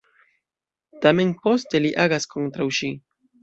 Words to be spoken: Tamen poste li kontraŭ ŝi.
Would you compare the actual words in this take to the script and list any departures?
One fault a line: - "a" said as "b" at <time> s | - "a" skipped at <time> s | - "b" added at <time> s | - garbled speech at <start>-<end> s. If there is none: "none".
- "agas" added at 2.1 s